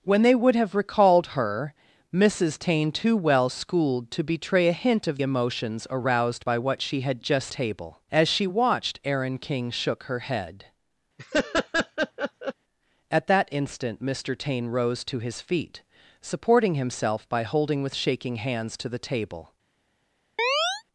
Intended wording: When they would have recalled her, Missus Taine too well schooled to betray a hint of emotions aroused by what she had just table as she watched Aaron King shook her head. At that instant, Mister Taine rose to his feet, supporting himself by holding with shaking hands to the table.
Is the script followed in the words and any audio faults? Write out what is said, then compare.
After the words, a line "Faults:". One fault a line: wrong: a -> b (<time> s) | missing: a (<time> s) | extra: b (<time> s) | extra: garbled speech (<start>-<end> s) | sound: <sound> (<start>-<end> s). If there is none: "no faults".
When they would have recalled her, Missus Taine too well schooled to betray a hint of emotions aroused by what she had just table as she watched Aaron King shook her head. At that instant, Mister Taine rose to his feet, supporting himself by holding with shaking hands to the table.
Faults:
sound: laugh (11.2-12.5 s)
sound: chirp (20.4-20.8 s)